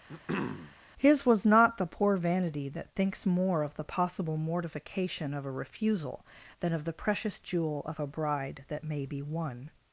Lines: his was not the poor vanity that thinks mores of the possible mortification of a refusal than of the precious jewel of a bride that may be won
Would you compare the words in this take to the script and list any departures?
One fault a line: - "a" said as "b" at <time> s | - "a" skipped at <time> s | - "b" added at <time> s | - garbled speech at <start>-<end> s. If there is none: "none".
- "mores" said as "more" at 3.3 s